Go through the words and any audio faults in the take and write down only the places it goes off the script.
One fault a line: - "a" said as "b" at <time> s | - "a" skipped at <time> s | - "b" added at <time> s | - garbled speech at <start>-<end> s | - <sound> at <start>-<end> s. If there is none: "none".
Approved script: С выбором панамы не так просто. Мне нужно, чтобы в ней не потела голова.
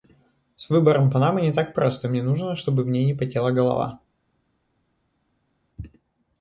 none